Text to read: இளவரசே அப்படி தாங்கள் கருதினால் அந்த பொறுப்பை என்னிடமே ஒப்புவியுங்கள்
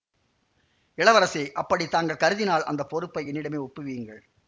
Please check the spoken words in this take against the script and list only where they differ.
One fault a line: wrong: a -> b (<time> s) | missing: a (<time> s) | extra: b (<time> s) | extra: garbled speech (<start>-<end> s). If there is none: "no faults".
no faults